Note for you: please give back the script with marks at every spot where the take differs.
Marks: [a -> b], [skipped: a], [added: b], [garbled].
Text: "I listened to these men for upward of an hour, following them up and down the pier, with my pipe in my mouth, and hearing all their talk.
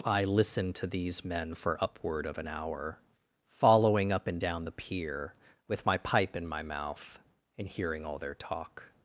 "I listened to these men for upward of an hour, following [skipped: them] up and down the pier, with my pipe in my mouth, and hearing all their talk.